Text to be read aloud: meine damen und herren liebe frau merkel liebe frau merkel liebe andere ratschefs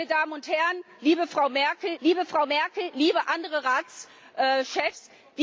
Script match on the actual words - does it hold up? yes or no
yes